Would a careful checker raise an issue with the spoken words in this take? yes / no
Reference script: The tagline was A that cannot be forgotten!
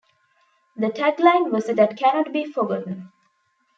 no